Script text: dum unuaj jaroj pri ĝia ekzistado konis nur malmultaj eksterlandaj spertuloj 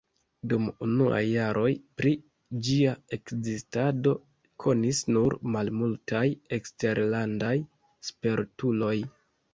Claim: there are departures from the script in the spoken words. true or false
false